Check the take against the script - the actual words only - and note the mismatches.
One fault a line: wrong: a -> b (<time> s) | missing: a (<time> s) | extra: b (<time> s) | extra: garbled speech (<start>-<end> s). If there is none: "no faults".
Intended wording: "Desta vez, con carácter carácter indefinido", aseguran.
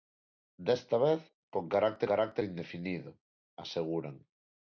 no faults